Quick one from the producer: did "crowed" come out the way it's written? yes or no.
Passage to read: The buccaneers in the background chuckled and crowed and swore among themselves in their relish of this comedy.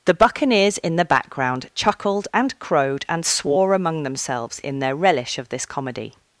yes